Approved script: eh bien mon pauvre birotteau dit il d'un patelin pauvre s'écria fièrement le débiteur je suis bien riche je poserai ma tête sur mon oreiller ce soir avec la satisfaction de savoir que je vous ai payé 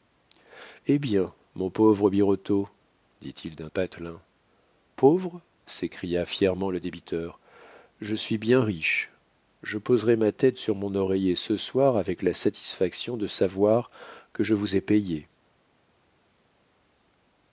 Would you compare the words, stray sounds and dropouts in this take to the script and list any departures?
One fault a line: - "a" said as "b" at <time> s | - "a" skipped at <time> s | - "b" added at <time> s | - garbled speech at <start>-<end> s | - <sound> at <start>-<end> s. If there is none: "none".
none